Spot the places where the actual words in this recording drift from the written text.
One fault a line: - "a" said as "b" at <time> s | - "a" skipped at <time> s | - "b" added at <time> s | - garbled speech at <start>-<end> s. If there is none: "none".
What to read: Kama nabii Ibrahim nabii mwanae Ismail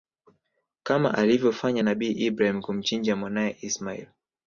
- "alivyofanya" added at 1.1 s
- "nabii" said as "kumchinja" at 2.6 s